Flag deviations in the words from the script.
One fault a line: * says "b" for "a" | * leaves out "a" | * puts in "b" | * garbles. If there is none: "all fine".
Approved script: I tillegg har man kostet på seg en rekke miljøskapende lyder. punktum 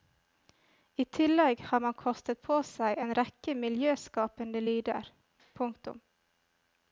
all fine